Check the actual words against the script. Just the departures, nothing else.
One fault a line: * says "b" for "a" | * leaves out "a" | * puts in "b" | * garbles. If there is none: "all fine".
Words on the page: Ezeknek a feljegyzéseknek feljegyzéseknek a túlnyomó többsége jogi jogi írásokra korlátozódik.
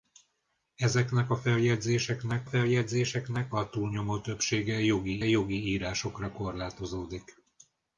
all fine